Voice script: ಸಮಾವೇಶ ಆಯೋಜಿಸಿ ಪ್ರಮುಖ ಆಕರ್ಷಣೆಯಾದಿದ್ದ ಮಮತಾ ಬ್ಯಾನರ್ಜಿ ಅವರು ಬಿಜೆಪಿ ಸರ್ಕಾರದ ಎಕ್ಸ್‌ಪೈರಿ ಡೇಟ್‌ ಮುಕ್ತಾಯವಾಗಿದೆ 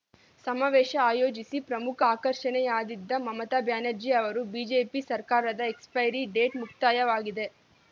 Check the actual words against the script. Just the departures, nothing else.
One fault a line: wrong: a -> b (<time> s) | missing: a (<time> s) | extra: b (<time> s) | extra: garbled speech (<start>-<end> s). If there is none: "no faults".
no faults